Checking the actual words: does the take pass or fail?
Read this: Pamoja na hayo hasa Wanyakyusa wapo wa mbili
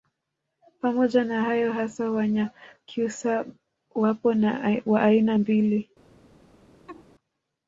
fail